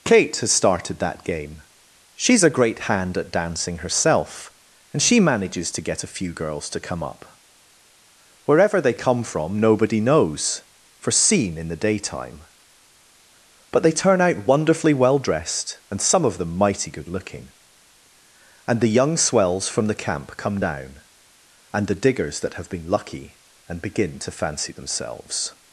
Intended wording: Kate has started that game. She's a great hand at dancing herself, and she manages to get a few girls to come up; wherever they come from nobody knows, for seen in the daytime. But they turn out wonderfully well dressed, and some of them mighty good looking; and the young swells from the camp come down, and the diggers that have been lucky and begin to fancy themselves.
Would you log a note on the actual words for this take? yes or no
no